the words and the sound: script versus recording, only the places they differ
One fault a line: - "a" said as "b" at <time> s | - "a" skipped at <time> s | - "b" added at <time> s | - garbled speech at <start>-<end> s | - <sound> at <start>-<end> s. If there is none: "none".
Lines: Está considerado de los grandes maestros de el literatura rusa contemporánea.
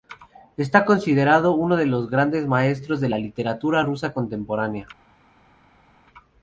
- "uno" added at 1.5 s
- "el" said as "la" at 3.1 s